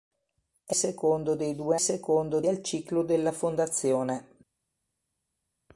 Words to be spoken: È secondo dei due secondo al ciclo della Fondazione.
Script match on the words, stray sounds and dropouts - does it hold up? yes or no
yes